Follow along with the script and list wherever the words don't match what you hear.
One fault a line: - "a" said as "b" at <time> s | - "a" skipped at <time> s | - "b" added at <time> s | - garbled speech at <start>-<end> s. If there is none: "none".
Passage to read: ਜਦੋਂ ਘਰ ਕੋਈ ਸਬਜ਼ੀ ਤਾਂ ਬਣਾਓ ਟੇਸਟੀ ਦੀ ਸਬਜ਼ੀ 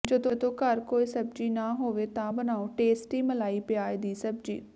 - "ਨਾ ਹੋਵੇ" added at 1.5 s
- "ਮਲਾਈ ਪਿਆਜ਼" added at 3.2 s